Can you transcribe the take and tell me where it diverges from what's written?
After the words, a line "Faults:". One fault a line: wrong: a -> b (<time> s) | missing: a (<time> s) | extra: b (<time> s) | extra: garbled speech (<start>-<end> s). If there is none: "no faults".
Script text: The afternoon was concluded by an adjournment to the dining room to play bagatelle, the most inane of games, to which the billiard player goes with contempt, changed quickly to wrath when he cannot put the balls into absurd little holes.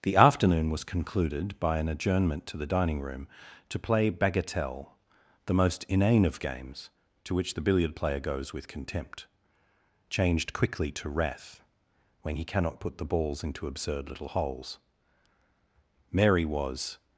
The afternoon was concluded by an adjournment to the dining room to play bagatelle, the most inane of games, to which the billiard player goes with contempt, changed quickly to wrath when he cannot put the balls into absurd little holes. Mary was
Faults:
extra: Mary was (16.1 s)